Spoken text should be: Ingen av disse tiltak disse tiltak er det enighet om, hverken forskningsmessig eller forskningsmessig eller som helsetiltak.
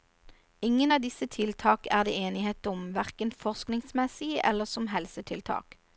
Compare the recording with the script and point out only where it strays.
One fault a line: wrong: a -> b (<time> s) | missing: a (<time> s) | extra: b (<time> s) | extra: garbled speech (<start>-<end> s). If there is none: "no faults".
missing: disse tiltak (1.9 s)
missing: forskningsmessig eller (4.6 s)